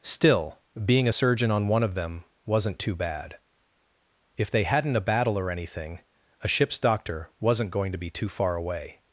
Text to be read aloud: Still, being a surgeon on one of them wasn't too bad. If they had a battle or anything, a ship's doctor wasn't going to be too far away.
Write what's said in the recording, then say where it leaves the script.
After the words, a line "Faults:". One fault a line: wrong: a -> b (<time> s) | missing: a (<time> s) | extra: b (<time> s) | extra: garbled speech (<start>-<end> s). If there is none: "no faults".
Still, being a surgeon on one of them wasn't too bad. If they hadn't a battle or anything, a ship's doctor wasn't going to be too far away.
Faults:
wrong: had -> hadn't (4.6 s)